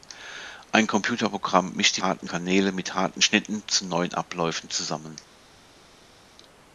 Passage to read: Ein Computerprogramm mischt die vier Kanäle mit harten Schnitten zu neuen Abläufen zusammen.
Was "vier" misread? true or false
true